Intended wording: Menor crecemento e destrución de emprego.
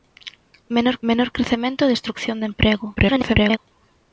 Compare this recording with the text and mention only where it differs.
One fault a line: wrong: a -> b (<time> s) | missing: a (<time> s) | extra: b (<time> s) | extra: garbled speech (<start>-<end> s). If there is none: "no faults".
extra: menor (1.1 s)
extra: garbled speech (2.9-3.6 s)